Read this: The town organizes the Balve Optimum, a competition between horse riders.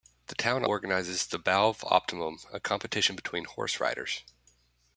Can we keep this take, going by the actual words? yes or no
yes